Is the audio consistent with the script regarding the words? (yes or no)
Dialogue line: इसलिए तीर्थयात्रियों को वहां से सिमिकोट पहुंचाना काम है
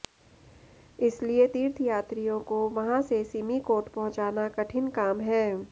no